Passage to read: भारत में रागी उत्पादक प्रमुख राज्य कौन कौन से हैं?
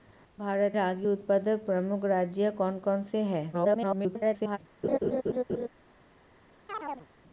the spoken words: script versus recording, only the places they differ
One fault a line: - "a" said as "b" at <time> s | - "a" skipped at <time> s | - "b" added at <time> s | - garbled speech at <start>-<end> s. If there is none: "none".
- "में" skipped at 0.8 s
- garbled speech at 3.5-4.6 s